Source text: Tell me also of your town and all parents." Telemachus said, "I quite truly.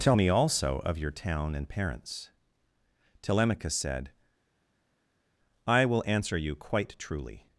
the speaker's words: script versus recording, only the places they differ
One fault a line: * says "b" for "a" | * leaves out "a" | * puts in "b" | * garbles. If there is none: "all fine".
* leaves out "all"
* puts in "will answer you"